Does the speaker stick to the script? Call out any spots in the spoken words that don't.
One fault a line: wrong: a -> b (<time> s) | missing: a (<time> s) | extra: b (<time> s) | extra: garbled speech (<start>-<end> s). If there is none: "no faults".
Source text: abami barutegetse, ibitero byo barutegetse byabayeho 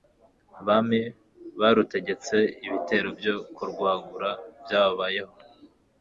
wrong: barutegetse -> kurwagura (3.6 s)